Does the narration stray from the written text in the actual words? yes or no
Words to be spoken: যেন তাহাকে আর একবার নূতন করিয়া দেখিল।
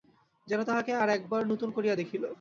no